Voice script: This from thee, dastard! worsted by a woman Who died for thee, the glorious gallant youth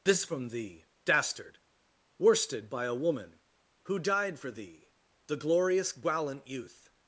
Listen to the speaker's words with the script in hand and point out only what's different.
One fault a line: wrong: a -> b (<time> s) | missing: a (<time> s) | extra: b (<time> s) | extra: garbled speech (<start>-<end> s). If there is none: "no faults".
no faults